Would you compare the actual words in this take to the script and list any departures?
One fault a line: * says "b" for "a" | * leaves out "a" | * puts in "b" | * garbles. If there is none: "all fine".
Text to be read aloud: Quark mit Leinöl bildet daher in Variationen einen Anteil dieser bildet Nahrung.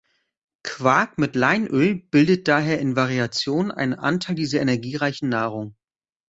* says "energiereichen" for "bildet"